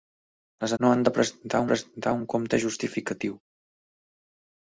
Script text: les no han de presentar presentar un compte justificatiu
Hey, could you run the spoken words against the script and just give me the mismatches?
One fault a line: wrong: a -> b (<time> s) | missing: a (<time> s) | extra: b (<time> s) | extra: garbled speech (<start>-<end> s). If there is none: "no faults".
no faults